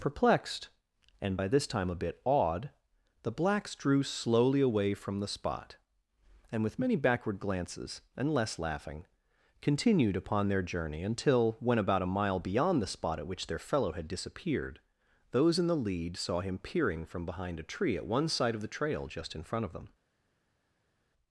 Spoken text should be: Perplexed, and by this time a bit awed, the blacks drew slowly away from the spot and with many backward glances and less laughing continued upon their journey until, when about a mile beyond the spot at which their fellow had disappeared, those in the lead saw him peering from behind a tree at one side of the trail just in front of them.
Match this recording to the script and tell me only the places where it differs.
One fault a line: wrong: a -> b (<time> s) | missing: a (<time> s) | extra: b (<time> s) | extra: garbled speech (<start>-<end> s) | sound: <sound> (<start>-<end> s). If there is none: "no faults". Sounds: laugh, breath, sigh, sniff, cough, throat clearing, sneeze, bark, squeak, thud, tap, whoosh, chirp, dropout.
no faults